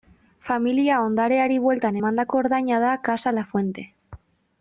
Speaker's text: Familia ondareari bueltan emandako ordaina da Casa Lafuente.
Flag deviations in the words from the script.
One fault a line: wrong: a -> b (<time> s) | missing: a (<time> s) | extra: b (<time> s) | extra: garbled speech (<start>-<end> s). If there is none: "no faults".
no faults